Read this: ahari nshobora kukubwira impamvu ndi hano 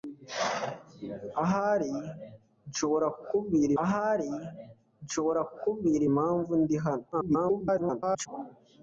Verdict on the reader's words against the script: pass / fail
fail